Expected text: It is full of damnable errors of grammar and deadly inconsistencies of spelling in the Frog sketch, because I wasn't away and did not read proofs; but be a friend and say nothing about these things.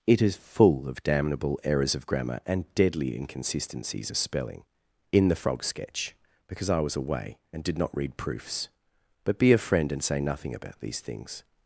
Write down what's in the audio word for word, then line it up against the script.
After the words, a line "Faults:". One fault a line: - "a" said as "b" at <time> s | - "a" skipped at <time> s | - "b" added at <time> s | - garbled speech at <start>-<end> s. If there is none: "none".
It is full of damnable errors of grammar and deadly inconsistencies of spelling in the Frog sketch, because I was away and did not read proofs; but be a friend and say nothing about these things.
Faults:
- "wasn't" said as "was" at 6.8 s